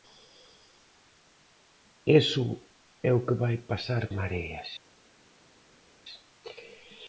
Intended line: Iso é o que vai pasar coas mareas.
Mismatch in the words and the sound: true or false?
true